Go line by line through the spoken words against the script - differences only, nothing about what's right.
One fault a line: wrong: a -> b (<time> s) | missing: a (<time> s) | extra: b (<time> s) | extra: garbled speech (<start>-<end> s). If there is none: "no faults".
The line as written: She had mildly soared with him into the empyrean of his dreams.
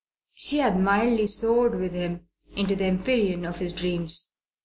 no faults